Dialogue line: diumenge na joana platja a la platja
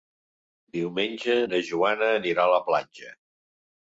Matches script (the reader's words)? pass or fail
fail